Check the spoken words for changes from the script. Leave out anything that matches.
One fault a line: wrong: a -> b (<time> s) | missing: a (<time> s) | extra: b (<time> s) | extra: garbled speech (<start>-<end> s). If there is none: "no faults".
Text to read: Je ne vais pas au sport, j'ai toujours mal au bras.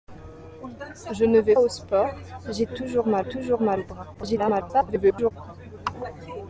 missing: pas (1.6 s)
extra: toujours mal (3.2 s)
extra: garbled speech (4.1-5.3 s)